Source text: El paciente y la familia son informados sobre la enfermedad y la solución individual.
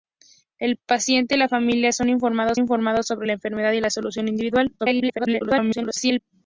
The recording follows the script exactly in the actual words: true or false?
false